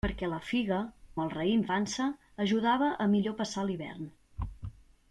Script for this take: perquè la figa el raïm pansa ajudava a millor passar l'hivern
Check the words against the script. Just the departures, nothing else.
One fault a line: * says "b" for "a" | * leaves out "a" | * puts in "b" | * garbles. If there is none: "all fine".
all fine